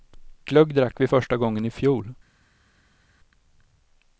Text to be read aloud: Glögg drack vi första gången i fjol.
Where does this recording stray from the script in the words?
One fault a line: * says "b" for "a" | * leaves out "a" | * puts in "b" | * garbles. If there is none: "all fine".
all fine